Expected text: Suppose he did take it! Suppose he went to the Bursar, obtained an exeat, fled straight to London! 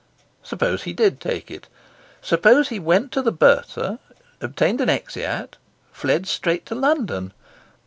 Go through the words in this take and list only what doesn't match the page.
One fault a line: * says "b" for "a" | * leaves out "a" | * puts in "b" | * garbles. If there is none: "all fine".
all fine